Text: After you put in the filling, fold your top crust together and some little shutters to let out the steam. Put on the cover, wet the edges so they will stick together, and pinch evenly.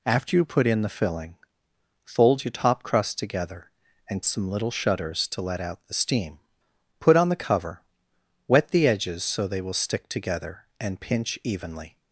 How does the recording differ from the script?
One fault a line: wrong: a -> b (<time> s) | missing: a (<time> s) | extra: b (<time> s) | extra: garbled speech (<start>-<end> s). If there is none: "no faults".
no faults